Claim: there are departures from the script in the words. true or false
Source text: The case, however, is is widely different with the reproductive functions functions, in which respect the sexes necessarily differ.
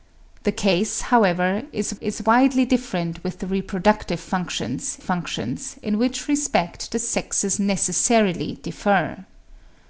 false